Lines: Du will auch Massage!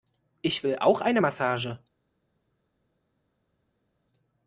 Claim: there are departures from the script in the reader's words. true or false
true